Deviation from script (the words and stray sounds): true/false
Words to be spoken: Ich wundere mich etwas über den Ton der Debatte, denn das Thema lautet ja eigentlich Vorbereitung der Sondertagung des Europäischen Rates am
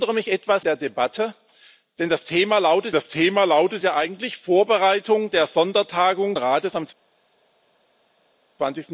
true